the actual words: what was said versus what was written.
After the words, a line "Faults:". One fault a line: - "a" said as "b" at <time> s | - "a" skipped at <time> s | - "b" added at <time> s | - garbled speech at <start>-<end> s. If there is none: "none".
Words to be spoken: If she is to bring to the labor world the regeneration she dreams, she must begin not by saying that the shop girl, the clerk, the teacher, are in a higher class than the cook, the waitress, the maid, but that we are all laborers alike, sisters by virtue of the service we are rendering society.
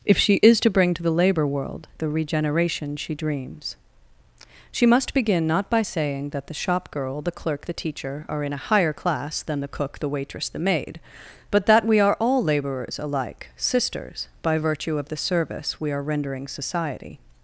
If she is to bring to the labor world the regeneration she dreams, she must begin not by saying that the shop girl, the clerk, the teacher, are in a higher class than the cook, the waitress, the maid, but that we are all laborers alike, sisters by virtue of the service we are rendering society.
Faults:
none